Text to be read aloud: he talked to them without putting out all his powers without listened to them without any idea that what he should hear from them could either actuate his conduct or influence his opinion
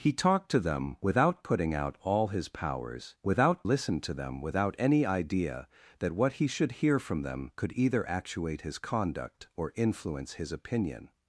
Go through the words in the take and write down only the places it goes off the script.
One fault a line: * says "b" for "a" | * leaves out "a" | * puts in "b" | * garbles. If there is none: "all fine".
all fine